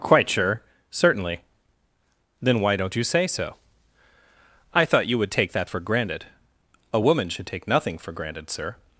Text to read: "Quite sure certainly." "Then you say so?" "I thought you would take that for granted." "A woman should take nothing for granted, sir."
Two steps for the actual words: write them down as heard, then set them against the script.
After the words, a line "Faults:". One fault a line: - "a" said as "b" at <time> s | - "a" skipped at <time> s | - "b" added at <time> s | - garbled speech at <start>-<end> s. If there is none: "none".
"Quite sure certainly." "Then why don't you say so?" "I thought you would take that for granted." "A woman should take nothing for granted, sir."
Faults:
- "why don't" added at 2.6 s